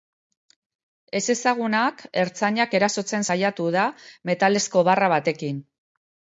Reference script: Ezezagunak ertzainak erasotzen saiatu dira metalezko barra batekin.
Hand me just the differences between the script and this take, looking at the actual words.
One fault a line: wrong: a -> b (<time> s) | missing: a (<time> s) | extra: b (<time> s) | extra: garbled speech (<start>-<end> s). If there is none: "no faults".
wrong: dira -> da (3.8 s)